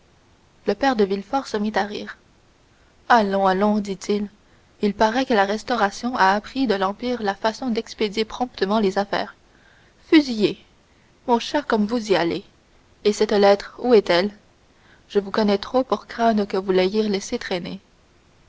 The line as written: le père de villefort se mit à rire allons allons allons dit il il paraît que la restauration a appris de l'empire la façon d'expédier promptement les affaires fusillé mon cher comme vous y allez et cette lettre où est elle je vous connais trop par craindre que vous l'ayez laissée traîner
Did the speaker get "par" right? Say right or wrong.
wrong